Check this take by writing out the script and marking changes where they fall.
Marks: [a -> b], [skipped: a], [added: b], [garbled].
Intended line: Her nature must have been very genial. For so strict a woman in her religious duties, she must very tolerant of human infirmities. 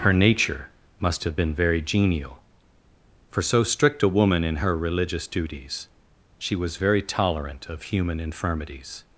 Her nature must have been very genial. For so strict a woman in her religious duties, she [must -> was] very tolerant of human infirmities.